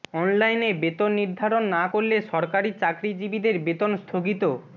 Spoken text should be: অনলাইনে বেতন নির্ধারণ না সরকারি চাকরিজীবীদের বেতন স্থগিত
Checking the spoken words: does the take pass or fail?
fail